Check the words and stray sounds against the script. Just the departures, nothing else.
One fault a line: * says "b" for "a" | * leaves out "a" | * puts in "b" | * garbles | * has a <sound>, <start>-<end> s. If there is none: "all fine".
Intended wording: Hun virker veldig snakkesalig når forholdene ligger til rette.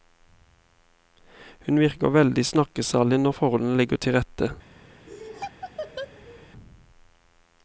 * has a laugh, 5.1-6.5 s